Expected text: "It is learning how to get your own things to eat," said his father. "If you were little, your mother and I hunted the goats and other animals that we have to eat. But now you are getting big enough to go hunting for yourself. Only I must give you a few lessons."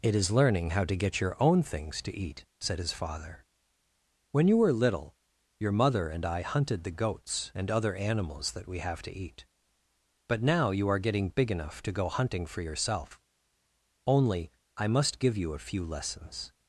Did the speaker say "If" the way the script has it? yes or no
no